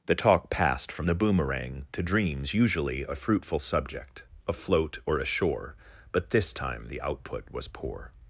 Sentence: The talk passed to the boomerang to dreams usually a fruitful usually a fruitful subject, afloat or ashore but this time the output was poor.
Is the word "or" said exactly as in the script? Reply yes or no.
yes